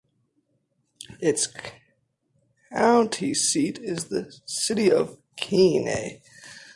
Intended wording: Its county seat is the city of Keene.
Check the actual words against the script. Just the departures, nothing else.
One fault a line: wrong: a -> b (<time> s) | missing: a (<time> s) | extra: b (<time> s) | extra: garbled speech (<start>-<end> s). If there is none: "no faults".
no faults